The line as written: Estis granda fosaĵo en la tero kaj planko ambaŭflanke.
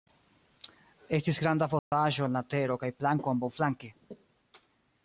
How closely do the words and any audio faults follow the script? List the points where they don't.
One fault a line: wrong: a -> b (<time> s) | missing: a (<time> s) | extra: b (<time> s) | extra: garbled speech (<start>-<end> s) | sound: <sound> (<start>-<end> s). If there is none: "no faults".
sound: dropout (1.8-1.9 s)